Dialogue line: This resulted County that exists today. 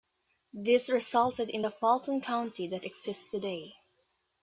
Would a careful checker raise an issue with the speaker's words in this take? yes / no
yes